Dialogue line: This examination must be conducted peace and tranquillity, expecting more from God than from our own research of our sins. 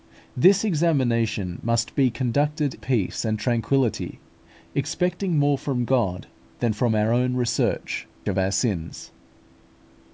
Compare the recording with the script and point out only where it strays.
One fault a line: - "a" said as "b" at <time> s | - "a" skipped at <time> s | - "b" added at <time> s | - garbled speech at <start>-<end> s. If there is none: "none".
none